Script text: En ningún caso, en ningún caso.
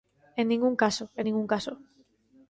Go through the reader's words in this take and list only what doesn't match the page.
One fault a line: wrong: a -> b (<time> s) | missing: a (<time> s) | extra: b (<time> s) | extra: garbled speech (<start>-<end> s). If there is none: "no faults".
no faults